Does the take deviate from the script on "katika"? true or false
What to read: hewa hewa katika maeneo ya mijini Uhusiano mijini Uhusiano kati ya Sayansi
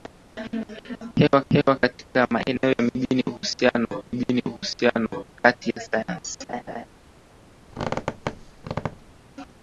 false